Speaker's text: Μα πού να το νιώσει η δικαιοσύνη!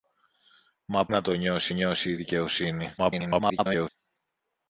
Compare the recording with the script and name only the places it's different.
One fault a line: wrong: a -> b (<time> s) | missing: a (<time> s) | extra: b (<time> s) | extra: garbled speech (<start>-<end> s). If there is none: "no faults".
missing: πού (1.1 s)
extra: νιώσει (1.7 s)
extra: garbled speech (3.0-3.9 s)